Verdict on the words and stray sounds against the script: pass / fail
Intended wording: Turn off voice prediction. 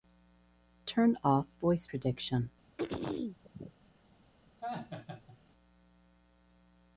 fail